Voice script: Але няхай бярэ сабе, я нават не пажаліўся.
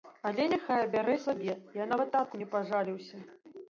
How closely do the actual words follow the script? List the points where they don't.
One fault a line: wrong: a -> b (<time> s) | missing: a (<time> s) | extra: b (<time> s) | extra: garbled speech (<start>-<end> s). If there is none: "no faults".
extra: татку (2.2 s)